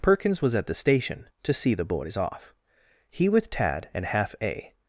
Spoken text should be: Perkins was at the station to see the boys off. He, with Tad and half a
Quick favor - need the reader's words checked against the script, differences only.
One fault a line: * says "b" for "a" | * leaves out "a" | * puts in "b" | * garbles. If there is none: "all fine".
all fine